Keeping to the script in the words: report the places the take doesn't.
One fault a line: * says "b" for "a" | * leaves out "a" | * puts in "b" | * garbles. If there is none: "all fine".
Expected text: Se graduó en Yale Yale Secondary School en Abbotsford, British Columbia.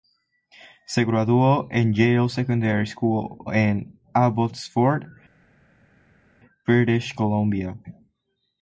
* leaves out "Yale"